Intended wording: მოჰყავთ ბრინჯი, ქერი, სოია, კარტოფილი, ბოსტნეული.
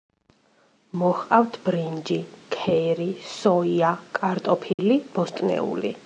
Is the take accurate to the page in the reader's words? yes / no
yes